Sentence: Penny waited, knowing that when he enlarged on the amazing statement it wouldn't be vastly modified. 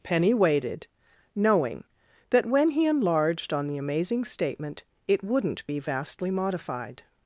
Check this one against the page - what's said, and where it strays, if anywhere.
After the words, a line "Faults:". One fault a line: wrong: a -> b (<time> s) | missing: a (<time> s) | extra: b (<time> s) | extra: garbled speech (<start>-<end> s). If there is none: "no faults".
Penny waited, knowing that when he enlarged on the amazing statement it wouldn't be vastly modified.
Faults:
no faults